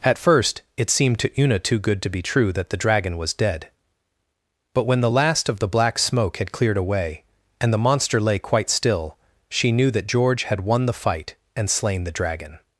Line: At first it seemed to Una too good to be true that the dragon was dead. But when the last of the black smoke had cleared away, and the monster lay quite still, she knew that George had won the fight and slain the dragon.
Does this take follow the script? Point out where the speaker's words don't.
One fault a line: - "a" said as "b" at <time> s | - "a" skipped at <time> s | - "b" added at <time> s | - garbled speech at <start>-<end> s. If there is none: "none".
none